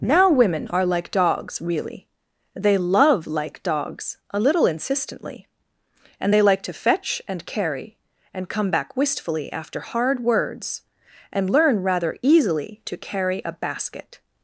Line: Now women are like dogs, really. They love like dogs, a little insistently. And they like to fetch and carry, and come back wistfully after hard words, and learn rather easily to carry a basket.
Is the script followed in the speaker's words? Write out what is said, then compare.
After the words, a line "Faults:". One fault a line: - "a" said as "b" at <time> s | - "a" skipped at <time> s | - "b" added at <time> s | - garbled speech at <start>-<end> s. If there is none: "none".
Now women are like dogs, really. They love like dogs, a little insistently. And they like to fetch and carry, and come back wistfully after hard words, and learn rather easily to carry a basket.
Faults:
none